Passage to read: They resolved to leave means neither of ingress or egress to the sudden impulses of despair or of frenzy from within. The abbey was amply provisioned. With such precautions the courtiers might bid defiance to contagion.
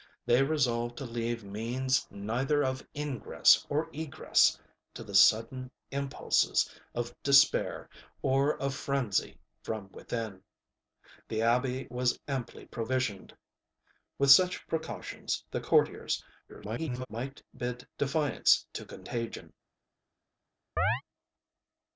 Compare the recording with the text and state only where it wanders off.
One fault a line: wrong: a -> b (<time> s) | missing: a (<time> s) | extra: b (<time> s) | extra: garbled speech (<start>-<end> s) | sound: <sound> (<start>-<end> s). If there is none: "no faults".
extra: garbled speech (16.5-17.1 s)
sound: chirp (20.8-21.0 s)